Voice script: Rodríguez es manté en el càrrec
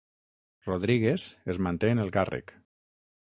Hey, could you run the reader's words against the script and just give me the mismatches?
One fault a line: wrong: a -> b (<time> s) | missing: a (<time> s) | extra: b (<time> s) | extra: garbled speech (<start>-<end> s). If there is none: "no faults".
no faults